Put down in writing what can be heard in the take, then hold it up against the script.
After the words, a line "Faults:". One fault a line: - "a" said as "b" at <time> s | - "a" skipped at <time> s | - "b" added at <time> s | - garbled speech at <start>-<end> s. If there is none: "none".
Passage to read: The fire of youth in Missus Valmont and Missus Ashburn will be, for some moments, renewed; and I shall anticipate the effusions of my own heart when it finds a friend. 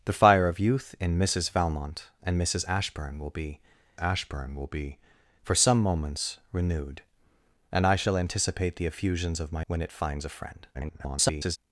The fire of youth in Missus Valmont and Missus Ashburn will be Ashburn will be, for some moments, renewed; and I shall anticipate the effusions of my when it finds a friend. [garbled]
Faults:
- "Ashburn will be" added at 3.9 s
- "own heart" skipped at 9.6 s
- garbled speech at 10.7-11.6 s